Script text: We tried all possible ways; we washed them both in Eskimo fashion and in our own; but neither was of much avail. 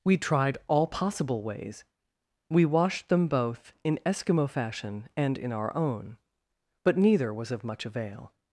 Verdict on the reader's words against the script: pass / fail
pass